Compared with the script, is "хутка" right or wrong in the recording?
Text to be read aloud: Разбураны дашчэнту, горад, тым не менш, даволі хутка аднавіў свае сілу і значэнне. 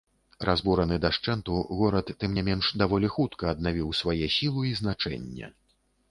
right